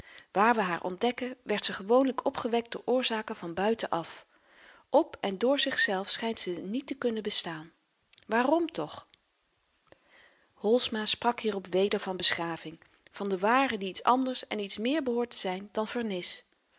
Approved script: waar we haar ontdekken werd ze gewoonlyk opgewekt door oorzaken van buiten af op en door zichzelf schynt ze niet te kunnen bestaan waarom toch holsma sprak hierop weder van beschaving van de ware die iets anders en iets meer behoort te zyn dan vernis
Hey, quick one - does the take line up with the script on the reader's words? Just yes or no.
yes